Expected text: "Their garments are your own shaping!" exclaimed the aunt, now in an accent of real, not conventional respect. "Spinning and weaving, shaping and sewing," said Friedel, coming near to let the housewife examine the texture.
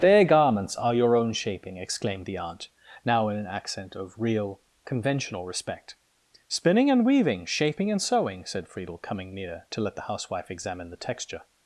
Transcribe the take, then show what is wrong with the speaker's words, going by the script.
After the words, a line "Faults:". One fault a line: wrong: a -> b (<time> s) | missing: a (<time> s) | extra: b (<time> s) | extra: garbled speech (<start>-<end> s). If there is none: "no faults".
"Their garments are your own shaping!" exclaimed the aunt, now in an accent of real, conventional respect. "Spinning and weaving, shaping and sewing," said Friedel, coming near to let the housewife examine the texture.
Faults:
missing: not (4.6 s)